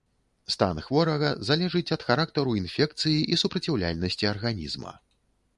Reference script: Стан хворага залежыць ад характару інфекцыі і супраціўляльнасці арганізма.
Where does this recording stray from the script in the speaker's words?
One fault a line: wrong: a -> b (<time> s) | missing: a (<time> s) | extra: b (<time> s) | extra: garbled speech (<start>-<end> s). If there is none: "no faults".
no faults